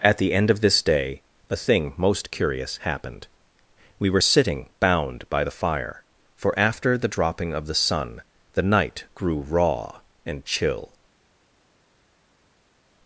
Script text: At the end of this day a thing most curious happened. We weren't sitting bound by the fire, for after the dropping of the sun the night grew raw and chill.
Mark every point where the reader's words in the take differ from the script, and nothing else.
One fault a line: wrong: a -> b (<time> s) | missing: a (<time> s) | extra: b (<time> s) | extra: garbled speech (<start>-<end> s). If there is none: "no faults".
wrong: weren't -> were (4.1 s)